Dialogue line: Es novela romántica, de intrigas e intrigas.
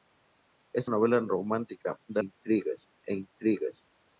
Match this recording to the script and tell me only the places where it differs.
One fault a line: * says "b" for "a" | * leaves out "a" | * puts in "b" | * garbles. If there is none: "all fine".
all fine